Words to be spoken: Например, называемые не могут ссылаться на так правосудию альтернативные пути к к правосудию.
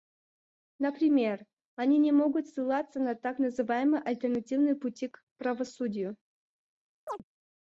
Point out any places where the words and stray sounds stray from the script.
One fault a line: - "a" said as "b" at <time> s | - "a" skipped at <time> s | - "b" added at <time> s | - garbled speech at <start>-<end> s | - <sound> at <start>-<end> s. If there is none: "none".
- "называемые" said as "они" at 1.8 s
- "правосудию" said as "называемые" at 3.4 s
- "к" skipped at 5.2 s
- chirp at 7.1-7.2 s